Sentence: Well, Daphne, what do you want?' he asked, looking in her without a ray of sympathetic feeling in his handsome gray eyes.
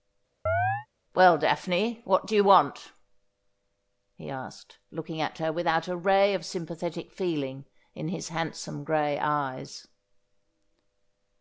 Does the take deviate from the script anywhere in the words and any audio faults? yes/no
yes